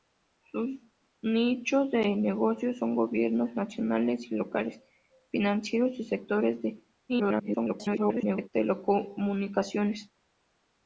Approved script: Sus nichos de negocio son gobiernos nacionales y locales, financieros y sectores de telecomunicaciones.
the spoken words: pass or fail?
fail